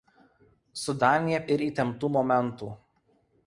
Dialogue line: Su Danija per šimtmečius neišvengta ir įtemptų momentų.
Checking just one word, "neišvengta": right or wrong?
wrong